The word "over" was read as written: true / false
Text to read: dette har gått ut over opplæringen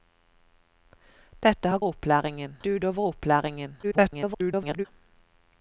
true